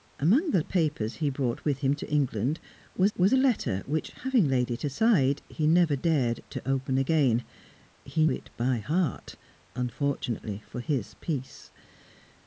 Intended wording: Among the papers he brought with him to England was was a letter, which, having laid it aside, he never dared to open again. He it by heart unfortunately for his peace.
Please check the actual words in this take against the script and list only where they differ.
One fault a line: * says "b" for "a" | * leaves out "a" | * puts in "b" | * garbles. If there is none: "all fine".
all fine